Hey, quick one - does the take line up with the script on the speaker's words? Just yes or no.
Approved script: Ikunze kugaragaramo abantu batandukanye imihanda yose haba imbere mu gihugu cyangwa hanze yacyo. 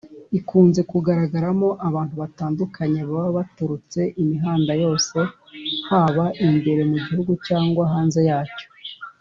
no